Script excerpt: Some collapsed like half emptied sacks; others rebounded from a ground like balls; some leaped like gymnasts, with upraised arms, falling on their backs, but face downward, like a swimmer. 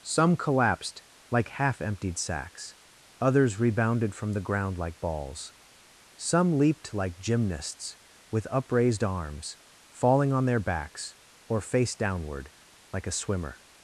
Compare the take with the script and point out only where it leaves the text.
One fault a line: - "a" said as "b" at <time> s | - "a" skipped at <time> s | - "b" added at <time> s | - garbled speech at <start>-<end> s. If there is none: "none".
- "a" said as "the" at 4.3 s
- "but" said as "or" at 11.5 s